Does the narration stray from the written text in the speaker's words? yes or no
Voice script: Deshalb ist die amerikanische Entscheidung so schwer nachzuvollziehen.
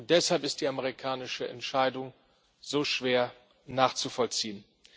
no